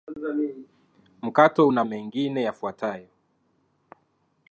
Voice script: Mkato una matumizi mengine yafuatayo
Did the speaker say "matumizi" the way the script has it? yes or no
no